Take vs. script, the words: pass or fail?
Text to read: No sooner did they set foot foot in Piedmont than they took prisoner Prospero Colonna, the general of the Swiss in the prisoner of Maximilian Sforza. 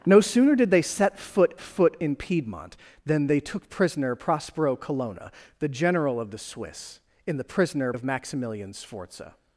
pass